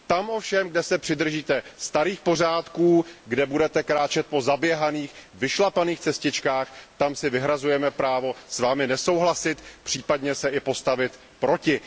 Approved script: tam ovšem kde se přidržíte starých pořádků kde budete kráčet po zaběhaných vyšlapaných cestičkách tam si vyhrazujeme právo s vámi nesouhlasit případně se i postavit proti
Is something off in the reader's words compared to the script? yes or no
no